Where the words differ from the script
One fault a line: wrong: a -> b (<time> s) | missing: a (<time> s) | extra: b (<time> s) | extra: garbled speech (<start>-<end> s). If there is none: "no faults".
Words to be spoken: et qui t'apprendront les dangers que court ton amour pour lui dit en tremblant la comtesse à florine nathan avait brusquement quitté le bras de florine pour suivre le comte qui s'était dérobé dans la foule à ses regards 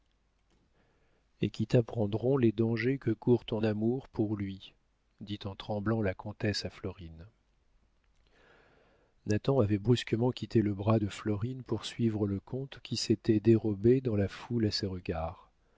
no faults